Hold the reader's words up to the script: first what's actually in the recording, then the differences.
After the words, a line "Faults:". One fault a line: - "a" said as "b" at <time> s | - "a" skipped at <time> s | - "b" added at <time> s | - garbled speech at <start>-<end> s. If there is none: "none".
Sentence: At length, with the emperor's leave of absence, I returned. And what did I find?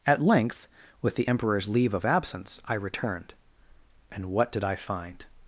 At length, with the emperor's leave of absence, I returned. And what did I find?
Faults:
none